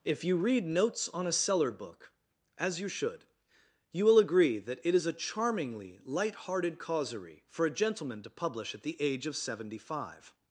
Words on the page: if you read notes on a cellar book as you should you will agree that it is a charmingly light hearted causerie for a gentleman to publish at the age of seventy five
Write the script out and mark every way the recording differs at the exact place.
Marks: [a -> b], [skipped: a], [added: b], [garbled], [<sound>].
if you read notes on a cellar book as you should you will agree that it is a charmingly light hearted causerie for a gentleman to publish at the age of seventy five